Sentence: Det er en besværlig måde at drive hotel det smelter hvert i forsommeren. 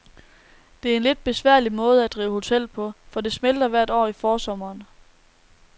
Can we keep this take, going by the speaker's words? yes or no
no